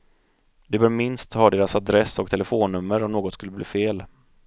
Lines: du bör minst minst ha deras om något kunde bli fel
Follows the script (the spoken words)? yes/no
no